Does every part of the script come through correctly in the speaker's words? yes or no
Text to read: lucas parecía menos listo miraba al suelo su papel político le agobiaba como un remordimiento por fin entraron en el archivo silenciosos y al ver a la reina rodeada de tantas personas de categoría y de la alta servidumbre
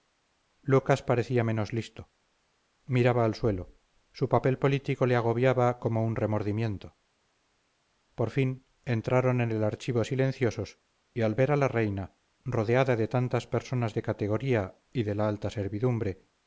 yes